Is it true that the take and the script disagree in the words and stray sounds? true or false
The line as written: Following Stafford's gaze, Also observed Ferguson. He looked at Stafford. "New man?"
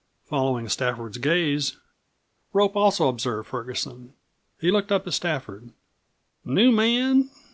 true